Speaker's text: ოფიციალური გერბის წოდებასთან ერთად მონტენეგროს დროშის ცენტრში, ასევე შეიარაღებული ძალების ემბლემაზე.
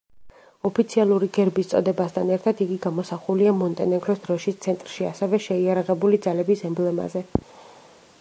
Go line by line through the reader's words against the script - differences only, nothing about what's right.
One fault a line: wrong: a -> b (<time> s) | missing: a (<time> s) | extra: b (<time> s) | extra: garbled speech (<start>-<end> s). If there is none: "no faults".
extra: იგი გამოსახულია (2.6 s)